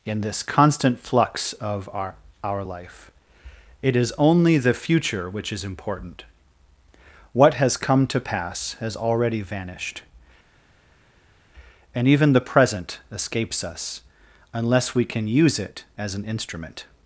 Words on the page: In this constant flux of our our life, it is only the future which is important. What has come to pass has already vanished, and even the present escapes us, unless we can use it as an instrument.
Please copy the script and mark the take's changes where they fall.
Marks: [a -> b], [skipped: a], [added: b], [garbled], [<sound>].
In this constant flux of our our life, it is only the future which is important. What has come to pass has already vanished, and even the present escapes us, unless we can use it as an instrument.